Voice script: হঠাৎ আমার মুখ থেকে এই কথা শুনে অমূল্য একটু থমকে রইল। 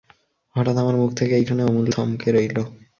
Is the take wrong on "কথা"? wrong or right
wrong